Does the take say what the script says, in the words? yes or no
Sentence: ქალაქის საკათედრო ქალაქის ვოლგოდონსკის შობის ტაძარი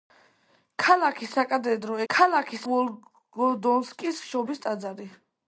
yes